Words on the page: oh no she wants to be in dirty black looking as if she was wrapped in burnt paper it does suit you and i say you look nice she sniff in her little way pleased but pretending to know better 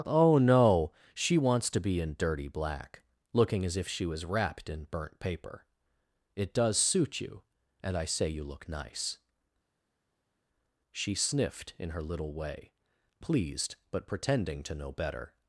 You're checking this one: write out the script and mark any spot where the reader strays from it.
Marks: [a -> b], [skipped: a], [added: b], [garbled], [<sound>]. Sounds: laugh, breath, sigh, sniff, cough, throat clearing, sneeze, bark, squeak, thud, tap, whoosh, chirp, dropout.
oh no she wants to be in dirty black looking as if she was wrapped in burnt paper it does suit you and i say you look nice she [sniff -> sniffed] in her little way pleased but pretending to know better